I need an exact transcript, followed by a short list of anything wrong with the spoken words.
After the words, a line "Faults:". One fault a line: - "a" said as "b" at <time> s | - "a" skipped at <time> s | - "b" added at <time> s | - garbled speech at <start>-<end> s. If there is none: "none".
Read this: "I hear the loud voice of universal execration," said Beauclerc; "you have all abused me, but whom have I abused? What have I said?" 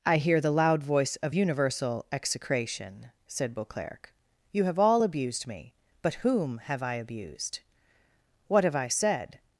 "I hear the loud voice of universal execration," said Beauclerc; "you have all abused me, but whom have I abused? What have I said?"
Faults:
none